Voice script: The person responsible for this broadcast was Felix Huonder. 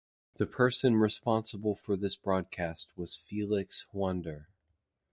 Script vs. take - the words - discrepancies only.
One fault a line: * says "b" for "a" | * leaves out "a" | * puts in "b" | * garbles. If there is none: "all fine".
all fine